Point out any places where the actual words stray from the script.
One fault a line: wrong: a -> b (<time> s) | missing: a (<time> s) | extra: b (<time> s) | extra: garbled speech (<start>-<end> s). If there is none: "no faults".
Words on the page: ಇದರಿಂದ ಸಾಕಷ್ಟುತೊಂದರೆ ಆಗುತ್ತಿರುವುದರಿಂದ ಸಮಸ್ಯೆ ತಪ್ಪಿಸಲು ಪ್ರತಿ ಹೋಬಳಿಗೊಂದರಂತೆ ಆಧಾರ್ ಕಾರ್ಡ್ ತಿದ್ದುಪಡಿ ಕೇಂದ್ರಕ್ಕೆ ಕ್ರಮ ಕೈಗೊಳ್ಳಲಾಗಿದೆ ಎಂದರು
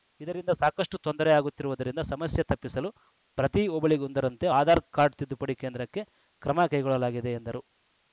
no faults